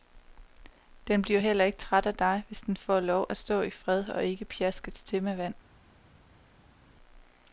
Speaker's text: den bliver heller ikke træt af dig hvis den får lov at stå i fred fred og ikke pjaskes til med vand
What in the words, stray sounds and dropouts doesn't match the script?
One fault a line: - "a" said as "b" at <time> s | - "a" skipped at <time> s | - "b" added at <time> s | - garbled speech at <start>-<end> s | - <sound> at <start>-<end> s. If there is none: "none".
- "fred" skipped at 4.1 s